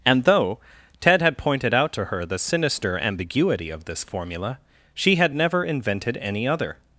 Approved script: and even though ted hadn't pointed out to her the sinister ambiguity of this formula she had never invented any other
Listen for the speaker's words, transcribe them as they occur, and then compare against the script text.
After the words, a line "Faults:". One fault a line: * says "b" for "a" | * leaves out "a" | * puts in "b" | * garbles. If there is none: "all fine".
and though ted had pointed out to her the sinister ambiguity of this formula she had never invented any other
Faults:
* leaves out "even"
* says "had" for "hadn't"